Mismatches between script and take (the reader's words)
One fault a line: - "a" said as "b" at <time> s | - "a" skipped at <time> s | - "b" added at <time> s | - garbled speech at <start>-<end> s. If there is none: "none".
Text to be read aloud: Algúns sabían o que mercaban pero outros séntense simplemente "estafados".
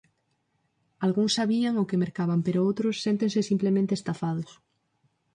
none